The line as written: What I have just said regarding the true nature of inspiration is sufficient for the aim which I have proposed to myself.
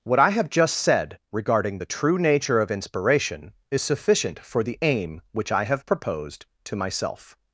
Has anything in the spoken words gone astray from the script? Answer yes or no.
no